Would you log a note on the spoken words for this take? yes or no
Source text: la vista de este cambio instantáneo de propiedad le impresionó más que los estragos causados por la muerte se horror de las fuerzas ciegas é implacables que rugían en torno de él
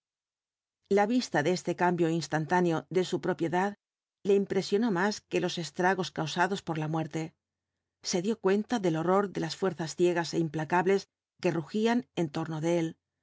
yes